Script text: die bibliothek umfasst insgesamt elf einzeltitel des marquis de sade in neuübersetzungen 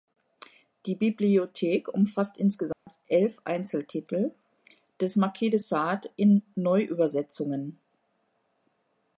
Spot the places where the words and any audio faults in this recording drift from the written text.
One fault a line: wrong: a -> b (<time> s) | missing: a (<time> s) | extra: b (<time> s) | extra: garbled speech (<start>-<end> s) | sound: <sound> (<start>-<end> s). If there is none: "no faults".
sound: dropout (2.7-2.9 s)